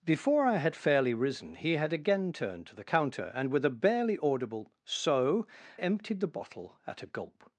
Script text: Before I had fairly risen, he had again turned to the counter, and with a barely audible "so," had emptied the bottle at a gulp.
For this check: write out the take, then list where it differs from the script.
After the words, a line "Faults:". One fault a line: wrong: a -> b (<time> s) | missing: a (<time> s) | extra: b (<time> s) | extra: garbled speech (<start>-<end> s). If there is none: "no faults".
Before I had fairly risen, he had again turned to the counter, and with a barely audible "so," emptied the bottle at a gulp.
Faults:
missing: had (5.5 s)